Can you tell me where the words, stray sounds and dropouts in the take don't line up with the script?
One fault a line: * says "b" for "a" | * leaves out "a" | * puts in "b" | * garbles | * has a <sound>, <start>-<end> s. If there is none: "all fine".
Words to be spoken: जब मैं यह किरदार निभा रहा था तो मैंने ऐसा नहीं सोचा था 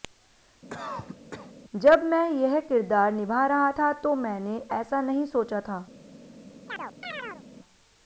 * has a cough, 0.7-1.5 s
* has a chirp, 6.7-7.4 s